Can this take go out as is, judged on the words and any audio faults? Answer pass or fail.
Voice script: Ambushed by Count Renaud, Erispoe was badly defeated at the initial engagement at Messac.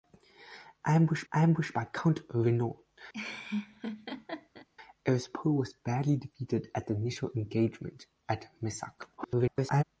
fail